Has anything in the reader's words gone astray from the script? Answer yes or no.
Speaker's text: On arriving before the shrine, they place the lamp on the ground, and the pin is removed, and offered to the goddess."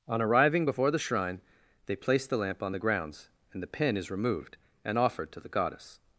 yes